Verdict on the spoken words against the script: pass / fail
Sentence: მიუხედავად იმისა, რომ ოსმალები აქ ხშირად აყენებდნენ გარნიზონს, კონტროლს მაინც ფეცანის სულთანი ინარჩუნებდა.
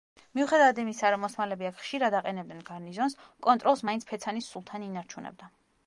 pass